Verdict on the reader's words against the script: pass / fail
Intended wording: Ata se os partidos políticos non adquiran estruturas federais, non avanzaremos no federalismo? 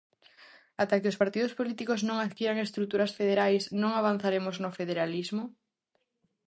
fail